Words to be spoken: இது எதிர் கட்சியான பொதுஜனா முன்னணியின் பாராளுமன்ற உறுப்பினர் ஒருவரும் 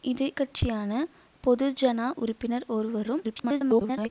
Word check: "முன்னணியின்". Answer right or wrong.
wrong